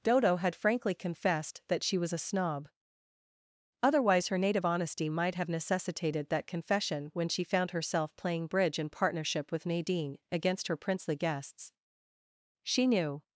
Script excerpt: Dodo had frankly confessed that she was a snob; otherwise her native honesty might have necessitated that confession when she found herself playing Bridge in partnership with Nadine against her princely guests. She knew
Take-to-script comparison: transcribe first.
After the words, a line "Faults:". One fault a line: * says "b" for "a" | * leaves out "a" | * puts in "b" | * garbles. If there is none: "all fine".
Dodo had frankly confessed that she was a snob; otherwise her native honesty might have necessitated that confession when she found herself playing Bridge in partnership with Nadine against her princely guests. She knew
Faults:
all fine